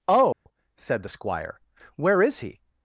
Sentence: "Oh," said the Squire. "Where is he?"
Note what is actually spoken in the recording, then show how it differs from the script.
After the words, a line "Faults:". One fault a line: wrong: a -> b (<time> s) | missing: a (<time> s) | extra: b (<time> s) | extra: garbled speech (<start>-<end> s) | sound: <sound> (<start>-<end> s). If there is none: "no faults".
"Oh," said the Squire. "Where is he?"
Faults:
sound: dropout (0.3-0.5 s)